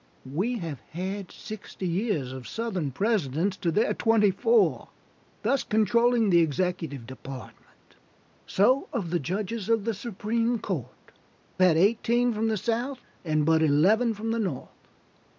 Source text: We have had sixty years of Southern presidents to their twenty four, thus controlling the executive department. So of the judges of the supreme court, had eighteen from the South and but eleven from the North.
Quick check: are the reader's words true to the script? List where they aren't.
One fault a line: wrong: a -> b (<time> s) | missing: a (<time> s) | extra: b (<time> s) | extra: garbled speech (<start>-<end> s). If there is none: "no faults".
no faults